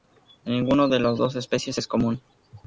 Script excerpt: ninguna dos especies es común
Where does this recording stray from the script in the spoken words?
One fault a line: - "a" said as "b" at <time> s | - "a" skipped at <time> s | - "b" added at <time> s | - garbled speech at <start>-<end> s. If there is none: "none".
- "de las" added at 0.9 s